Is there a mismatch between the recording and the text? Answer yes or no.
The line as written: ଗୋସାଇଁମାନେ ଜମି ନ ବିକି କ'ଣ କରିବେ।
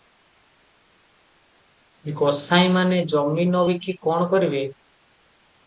no